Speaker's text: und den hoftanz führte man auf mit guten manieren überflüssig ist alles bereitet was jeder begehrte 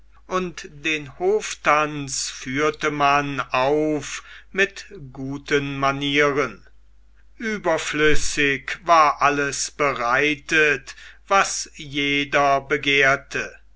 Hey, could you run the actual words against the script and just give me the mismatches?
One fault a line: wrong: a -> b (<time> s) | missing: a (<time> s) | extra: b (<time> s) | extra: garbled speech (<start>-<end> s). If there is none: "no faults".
wrong: ist -> war (8.8 s)